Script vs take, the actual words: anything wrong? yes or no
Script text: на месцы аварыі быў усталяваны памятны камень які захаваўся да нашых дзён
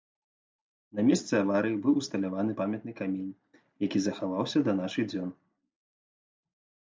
no